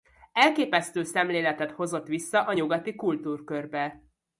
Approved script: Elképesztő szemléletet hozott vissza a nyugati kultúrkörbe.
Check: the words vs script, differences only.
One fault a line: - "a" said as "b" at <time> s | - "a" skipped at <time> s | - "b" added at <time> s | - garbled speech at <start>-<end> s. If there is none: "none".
none